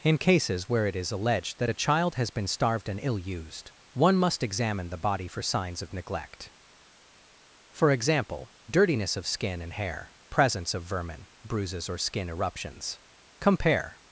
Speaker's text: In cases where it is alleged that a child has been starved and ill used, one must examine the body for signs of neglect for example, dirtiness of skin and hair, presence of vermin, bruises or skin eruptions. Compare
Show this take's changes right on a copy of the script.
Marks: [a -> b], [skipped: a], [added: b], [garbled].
In cases where it is alleged that a child has been starved and ill used, one must examine the body for signs of neglect for example, dirtiness of skin and hair, presence of vermin, bruises or skin eruptions. Compare